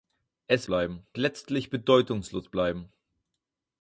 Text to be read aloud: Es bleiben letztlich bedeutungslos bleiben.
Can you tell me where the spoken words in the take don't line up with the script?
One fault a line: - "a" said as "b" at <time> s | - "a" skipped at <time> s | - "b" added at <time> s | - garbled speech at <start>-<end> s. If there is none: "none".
none